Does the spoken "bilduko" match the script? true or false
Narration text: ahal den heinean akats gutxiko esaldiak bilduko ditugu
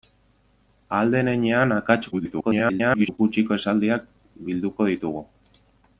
true